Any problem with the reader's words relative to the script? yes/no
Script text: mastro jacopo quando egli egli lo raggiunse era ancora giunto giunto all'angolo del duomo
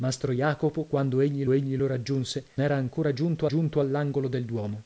no